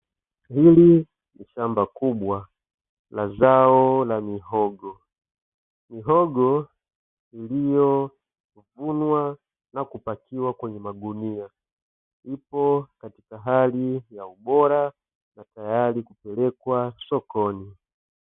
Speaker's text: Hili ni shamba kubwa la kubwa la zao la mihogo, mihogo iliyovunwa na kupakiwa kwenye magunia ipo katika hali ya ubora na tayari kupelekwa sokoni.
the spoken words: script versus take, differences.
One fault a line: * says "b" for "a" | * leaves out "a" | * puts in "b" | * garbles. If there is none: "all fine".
* leaves out "kubwa la"